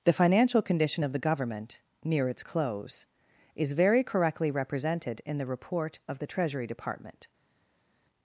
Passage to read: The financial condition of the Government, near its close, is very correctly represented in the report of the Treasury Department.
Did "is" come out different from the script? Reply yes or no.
no